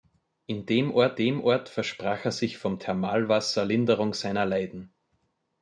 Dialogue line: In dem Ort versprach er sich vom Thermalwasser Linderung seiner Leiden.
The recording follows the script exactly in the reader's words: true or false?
false